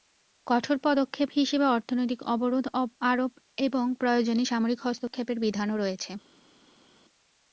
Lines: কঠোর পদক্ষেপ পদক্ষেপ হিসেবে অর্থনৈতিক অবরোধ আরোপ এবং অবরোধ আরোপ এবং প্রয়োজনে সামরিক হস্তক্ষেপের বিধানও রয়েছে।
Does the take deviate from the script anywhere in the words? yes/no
yes